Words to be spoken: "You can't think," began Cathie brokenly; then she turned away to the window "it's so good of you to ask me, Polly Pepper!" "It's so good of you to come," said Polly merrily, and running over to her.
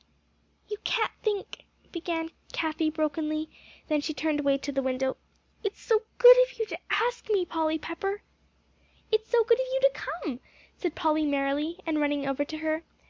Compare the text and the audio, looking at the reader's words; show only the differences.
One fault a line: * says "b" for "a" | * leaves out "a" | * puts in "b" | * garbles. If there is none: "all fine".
all fine